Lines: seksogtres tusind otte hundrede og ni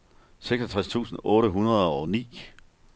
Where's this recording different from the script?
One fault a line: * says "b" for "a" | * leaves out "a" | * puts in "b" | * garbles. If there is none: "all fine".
all fine